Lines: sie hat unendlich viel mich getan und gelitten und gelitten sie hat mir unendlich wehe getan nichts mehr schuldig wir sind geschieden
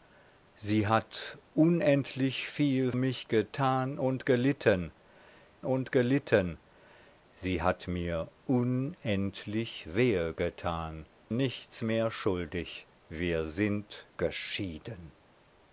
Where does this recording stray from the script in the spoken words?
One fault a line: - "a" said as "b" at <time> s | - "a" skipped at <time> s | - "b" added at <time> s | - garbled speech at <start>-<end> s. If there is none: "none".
none